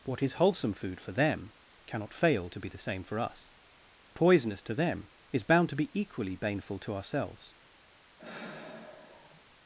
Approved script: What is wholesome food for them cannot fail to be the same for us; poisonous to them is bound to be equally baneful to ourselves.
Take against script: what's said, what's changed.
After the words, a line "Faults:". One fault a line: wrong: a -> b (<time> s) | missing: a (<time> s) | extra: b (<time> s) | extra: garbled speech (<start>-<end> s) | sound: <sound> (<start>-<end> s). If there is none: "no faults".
What is wholesome food for them cannot fail to be the same for us; poisonous to them is bound to be equally baneful to ourselves.
Faults:
sound: sigh (8.2-9.5 s)